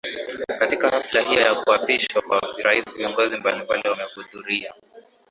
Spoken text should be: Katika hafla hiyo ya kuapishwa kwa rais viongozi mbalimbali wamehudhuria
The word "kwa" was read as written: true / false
true